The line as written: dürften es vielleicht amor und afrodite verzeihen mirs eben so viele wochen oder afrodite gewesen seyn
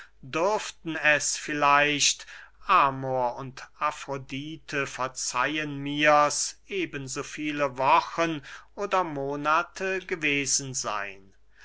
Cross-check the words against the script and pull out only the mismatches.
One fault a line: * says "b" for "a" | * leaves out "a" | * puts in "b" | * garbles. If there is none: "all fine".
* says "monate" for "afrodite"